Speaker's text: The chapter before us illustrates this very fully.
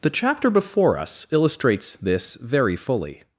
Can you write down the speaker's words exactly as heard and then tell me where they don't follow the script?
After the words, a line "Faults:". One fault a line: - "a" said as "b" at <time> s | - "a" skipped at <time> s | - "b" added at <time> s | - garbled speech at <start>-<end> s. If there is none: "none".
The chapter before us illustrates this very fully.
Faults:
none